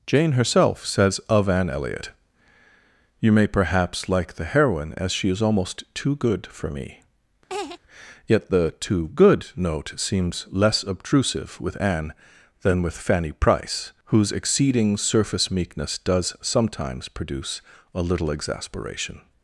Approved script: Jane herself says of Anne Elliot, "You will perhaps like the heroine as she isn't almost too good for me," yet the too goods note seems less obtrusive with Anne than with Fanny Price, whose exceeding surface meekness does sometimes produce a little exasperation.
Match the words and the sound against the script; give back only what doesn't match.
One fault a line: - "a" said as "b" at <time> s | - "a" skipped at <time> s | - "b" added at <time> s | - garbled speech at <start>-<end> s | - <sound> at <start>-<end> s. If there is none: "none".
- "will" said as "may" at 3.3 s
- "isn't" said as "is" at 5.3 s
- laugh at 7.5-7.8 s
- "goods" said as "good" at 9.1 s